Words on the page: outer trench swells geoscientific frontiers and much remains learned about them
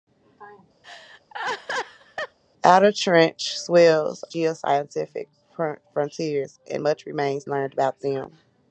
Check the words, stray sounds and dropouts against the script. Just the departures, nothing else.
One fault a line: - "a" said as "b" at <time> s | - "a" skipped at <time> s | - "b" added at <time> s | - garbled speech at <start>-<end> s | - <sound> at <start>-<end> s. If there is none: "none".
- laugh at 0.8-2.4 s